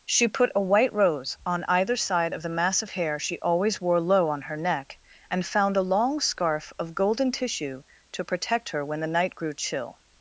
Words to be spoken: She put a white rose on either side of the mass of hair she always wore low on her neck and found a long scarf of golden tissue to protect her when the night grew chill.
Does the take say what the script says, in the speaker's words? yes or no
yes